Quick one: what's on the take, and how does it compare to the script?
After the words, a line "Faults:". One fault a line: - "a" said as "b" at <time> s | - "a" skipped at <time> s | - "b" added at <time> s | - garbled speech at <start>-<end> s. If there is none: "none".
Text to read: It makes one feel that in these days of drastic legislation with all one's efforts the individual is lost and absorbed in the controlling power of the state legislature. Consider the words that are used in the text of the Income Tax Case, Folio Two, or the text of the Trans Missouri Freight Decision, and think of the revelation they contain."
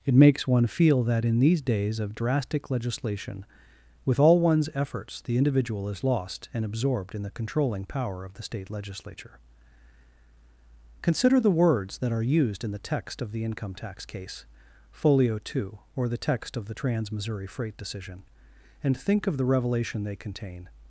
It makes one feel that in these days of drastic legislation with all one's efforts the individual is lost and absorbed in the controlling power of the state legislature. Consider the words that are used in the text of the Income Tax Case, Folio Two, or the text of the Trans Missouri Freight Decision, and think of the revelation they contain."
Faults:
none